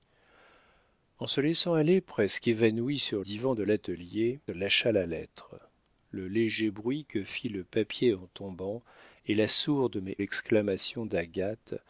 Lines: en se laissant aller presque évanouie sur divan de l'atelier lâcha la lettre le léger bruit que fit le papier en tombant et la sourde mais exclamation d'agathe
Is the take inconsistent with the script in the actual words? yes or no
no